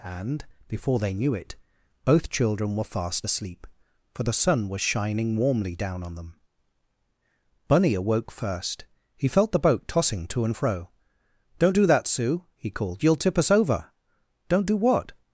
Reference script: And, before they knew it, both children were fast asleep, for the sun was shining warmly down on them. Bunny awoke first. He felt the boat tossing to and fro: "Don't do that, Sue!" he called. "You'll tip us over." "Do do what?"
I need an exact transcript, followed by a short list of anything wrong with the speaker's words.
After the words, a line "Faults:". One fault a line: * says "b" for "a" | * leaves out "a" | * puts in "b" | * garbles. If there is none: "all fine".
And, before they knew it, both children were fast asleep, for the sun was shining warmly down on them. Bunny awoke first. He felt the boat tossing to and fro: "Don't do that, Sue!" he called. "You'll tip us over." "Don't do what?"
Faults:
* says "Don't" for "Do"